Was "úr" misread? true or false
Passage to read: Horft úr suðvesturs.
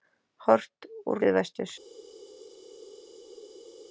false